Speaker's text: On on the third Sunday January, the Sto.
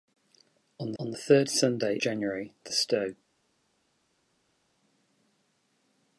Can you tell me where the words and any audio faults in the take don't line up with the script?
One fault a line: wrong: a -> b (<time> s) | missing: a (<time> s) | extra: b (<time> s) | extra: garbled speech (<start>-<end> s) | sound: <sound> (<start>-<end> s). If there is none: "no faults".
no faults